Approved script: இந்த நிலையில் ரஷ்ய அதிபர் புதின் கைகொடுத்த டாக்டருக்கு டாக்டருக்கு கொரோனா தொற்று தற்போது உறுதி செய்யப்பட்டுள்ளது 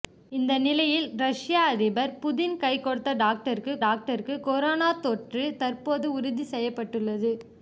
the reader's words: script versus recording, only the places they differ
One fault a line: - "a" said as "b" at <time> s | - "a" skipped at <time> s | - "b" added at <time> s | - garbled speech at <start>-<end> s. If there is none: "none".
none